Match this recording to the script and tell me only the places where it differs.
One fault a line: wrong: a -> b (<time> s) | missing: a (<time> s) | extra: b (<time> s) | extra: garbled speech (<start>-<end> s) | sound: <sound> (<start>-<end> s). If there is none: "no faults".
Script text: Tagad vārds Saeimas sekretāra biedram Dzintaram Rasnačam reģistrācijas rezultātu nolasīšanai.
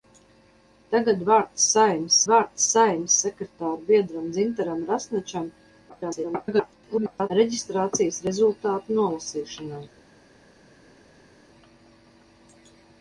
extra: vārds Saeimas (2.3 s)
extra: garbled speech (5.9-7.3 s)